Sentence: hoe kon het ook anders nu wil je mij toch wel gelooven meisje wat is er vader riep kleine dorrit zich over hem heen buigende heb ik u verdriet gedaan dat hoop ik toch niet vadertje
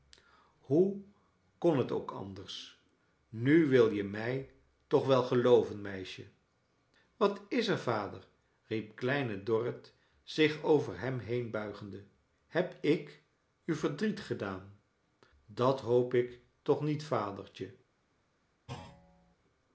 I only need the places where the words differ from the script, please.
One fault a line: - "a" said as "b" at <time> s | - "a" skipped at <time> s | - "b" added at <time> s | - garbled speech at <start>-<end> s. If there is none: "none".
none